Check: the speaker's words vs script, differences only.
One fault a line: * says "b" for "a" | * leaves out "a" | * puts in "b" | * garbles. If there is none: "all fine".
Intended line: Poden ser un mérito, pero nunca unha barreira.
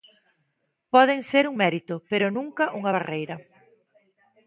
all fine